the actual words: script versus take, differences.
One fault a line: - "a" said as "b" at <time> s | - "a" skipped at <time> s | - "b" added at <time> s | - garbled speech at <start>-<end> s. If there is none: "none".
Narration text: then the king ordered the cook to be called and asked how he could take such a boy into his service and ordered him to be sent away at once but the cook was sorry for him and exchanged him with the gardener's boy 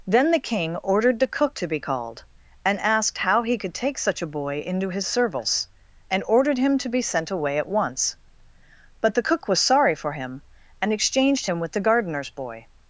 none